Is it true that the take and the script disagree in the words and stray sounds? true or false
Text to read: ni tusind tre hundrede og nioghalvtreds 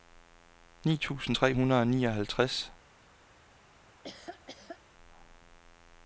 true